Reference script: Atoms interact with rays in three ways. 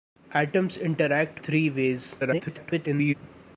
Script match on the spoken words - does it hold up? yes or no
no